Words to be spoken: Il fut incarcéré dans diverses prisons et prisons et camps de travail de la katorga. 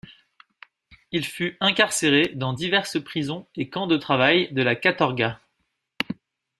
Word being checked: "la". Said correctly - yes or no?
yes